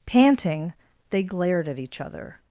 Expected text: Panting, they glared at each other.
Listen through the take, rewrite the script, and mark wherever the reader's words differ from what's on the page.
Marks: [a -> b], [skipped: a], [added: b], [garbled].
Panting, they glared at each other.